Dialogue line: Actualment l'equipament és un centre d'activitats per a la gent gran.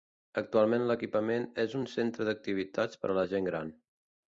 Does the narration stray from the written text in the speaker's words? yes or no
no